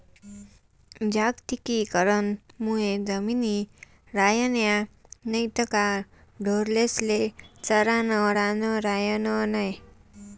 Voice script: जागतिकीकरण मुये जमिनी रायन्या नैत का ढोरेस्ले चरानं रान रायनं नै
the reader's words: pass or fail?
pass